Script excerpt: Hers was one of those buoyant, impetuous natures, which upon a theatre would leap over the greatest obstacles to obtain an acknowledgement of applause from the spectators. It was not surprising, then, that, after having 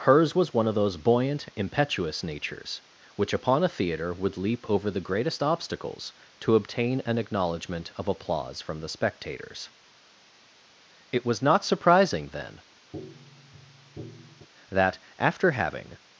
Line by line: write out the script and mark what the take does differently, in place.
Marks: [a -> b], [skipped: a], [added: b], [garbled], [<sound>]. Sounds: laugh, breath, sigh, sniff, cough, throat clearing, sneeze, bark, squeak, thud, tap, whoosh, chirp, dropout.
Hers was one of those buoyant, impetuous natures, which upon a theatre would leap over the greatest obstacles to obtain an acknowledgement of applause from the spectators. It was not surprising, then, [tap] that, after having